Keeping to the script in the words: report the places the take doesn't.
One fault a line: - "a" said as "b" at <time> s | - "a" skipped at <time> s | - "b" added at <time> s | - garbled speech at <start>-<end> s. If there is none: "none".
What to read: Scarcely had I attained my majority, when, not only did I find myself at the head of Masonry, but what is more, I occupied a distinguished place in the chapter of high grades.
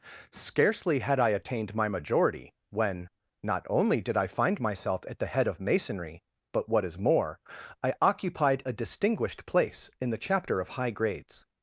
none